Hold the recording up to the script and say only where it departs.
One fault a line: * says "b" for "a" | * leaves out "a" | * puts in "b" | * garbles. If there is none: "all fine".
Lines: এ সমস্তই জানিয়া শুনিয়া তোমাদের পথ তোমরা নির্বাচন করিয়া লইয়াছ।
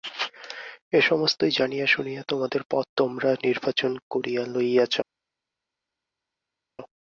all fine